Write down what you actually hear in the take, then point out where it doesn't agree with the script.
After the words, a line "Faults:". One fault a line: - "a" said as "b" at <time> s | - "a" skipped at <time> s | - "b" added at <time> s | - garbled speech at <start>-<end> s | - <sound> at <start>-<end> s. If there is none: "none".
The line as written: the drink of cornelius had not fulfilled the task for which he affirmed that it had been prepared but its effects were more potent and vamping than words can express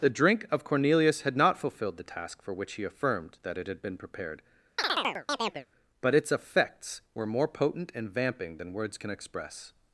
the drink of cornelius had not fulfilled the task for which he affirmed that it had been prepared but its effects were more potent and vamping than words can express
Faults:
- chirp at 4.8-5.7 s